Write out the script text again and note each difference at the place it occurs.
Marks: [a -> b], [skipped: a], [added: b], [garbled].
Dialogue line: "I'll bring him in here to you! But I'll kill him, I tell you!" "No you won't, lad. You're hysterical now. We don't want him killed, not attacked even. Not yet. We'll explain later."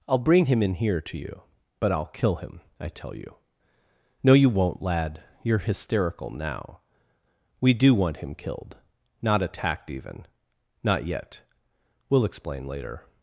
"I'll bring him in here to you! But I'll kill him, I tell you!" "No you won't, lad. You're hysterical now. We [don't -> do] want him killed, not attacked even. Not yet. We'll explain later."